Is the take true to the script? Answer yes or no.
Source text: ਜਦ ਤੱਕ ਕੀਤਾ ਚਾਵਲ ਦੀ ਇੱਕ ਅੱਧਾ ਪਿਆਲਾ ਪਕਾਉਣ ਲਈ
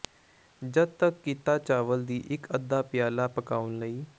yes